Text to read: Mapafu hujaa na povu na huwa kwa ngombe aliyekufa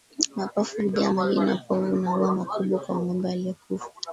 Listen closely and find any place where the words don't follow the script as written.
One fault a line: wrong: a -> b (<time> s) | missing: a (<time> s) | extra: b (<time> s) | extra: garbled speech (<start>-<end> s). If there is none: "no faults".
extra: maji (1.1 s)
extra: makubwa (2.3 s)